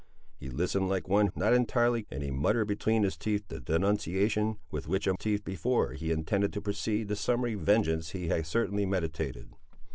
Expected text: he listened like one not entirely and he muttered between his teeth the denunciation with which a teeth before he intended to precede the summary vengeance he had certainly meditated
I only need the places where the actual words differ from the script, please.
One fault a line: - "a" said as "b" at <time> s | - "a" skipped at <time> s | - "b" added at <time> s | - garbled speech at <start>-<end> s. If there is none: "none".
none